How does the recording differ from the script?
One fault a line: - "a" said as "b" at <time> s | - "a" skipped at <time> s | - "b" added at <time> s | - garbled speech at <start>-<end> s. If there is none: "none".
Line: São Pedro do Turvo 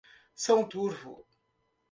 - "Pedro do" skipped at 0.7 s